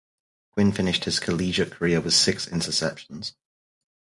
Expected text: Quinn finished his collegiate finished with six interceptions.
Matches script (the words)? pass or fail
fail